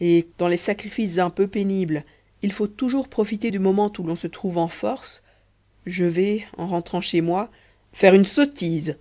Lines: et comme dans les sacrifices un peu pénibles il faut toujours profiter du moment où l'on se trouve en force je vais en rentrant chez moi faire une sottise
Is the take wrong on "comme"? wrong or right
wrong